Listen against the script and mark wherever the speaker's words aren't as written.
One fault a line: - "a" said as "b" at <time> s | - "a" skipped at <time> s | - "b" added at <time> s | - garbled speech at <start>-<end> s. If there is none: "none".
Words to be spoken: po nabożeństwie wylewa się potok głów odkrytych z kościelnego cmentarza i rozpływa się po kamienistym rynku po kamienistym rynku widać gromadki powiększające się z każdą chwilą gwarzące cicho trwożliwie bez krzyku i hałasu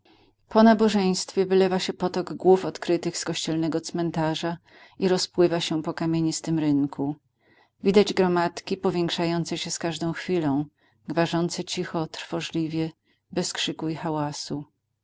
- "po kamienistym rynku" skipped at 7.2 s